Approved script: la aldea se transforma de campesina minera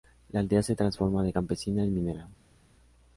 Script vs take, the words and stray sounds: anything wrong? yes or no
yes